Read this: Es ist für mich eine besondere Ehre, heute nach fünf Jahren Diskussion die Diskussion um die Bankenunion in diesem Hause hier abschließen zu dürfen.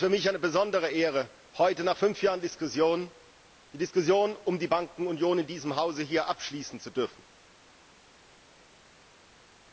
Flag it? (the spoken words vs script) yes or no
no